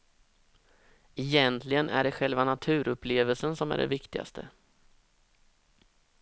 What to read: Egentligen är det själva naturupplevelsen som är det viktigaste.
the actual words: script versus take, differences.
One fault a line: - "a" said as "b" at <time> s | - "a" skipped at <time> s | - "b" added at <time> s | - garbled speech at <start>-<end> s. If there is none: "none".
none